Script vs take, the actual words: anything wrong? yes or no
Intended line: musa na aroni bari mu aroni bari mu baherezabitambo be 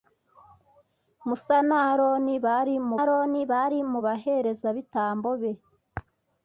no